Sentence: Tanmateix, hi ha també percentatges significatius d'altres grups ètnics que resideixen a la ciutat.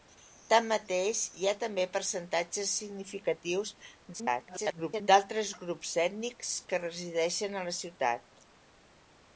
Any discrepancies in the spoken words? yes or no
yes